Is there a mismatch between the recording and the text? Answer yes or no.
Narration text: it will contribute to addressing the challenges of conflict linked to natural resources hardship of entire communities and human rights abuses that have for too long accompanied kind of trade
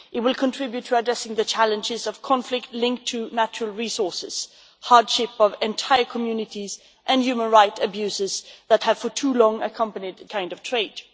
no